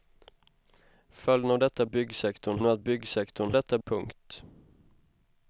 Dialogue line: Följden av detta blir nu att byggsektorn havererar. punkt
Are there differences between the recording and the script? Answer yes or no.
yes